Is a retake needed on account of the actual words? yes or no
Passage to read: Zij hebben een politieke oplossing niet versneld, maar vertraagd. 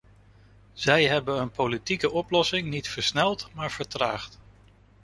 no